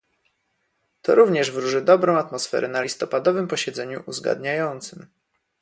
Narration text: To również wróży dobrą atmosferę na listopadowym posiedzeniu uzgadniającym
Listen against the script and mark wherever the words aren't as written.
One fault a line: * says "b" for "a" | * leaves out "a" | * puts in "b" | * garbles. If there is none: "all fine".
all fine